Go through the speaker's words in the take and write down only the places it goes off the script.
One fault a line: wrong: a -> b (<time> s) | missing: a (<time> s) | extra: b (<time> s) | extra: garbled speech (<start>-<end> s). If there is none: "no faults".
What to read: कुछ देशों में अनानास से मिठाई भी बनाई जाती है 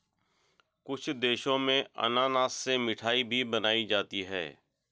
no faults